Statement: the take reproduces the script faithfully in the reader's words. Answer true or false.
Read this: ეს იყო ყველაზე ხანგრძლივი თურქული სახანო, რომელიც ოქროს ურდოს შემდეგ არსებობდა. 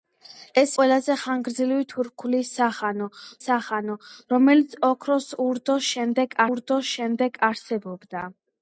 false